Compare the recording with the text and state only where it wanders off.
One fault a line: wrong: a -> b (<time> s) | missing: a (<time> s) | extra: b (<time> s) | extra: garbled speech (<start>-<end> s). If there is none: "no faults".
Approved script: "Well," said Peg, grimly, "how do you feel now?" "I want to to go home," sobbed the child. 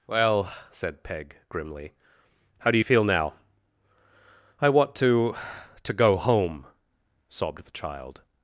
no faults